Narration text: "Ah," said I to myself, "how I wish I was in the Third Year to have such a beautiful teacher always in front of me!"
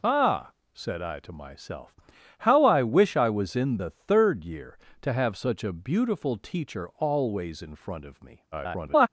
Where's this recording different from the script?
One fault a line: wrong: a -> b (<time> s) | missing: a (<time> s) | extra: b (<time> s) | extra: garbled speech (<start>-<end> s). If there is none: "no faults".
extra: garbled speech (8.5-9.1 s)